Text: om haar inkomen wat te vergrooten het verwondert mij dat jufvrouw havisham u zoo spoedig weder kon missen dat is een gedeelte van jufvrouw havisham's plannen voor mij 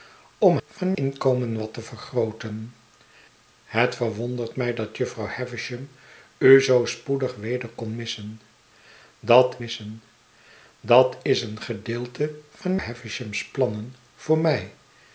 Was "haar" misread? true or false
true